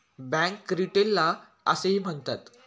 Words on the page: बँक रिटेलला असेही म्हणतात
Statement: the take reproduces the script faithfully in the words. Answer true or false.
true